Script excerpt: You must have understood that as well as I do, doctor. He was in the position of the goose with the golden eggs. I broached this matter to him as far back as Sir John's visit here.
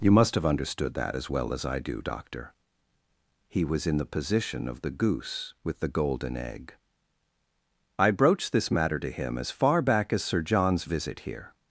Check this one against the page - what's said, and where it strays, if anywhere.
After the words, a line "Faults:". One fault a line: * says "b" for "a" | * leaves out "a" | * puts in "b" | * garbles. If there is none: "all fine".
You must have understood that as well as I do, doctor. He was in the position of the goose with the golden egg. I broached this matter to him as far back as Sir John's visit here.
Faults:
* says "egg" for "eggs"